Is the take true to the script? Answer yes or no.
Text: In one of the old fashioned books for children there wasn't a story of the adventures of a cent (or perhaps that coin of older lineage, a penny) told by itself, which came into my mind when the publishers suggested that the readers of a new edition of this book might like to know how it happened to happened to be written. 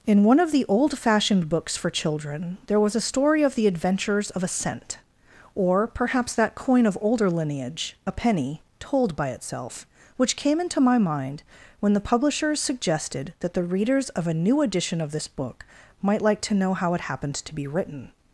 no